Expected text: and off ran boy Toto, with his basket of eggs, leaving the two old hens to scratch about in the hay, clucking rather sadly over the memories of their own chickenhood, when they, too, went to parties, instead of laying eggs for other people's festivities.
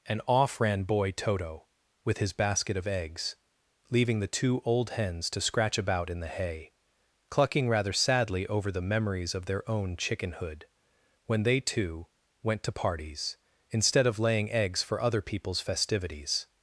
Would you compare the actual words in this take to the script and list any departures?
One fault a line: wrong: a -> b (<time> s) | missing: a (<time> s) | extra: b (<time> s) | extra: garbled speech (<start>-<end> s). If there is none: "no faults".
no faults